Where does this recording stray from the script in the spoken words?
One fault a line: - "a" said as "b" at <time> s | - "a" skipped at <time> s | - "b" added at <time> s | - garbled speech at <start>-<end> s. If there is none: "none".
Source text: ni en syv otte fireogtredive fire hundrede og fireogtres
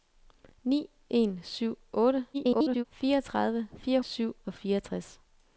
- garbled speech at 2.3-2.8 s
- "hundrede" said as "syv" at 4.0 s